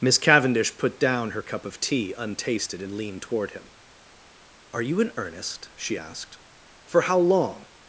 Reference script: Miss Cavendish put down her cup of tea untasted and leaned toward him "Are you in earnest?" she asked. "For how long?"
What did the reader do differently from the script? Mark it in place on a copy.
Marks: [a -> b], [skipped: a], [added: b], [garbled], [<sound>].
Miss Cavendish put down her cup of tea untasted and leaned toward him "Are you in earnest?" she asked. "For how long?"